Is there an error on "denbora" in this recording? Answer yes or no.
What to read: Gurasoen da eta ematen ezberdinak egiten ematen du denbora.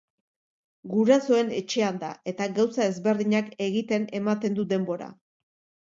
no